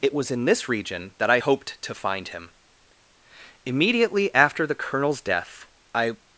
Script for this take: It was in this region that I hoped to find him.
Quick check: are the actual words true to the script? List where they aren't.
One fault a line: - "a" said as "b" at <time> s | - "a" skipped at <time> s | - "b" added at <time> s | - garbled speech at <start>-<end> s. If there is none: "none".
- "Immediately after the Colonel's death I" added at 3.6 s